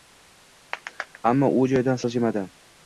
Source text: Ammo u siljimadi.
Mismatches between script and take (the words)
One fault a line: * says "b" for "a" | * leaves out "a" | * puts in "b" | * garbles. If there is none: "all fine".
* puts in "joyidan"